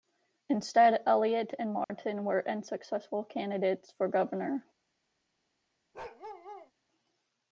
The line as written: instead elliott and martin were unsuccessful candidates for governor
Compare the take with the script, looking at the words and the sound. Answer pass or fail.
fail